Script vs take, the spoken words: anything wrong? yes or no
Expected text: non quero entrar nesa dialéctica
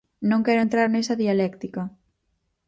no